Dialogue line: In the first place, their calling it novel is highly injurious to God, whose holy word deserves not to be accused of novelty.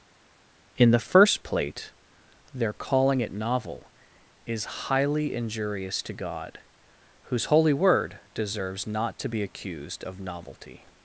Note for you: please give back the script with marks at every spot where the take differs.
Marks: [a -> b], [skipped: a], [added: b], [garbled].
In the first [place, -> plate] their calling it novel is highly injurious to God, whose holy word deserves not to be accused of novelty.